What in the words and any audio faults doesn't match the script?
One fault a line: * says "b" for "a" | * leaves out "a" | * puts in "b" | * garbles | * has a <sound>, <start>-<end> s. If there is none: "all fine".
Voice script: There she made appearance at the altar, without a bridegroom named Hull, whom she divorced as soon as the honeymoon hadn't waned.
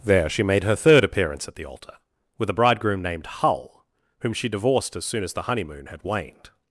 * puts in "her third"
* says "with" for "without"
* says "had" for "hadn't"